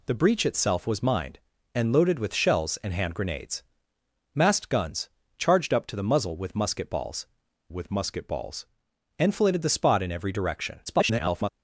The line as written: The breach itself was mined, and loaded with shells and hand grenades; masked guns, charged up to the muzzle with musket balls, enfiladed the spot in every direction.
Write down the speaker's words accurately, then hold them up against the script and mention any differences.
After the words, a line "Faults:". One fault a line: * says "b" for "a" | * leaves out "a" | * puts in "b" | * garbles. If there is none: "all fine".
The breach itself was mined, and loaded with shells and hand grenades; masked guns, charged up to the muzzle with musket balls with musket balls, enfiladed the spot in every direction. [garbled]
Faults:
* puts in "with musket balls"
* garbles